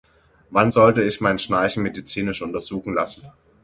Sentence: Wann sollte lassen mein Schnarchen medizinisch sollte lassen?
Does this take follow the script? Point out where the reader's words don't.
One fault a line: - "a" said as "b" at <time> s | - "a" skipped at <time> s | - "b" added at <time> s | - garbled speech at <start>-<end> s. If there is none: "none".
- "lassen" said as "ich" at 1.0 s
- "sollte" said as "untersuchen" at 2.4 s